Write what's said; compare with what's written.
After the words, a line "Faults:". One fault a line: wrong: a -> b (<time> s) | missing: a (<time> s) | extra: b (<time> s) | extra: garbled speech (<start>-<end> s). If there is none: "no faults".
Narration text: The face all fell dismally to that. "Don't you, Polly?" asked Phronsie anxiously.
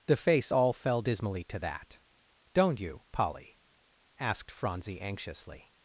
The face all fell dismally to that. "Don't you, Polly?" asked Phronsie anxiously.
Faults:
no faults